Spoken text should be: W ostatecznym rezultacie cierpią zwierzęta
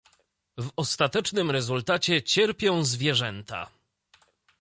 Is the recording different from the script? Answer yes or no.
no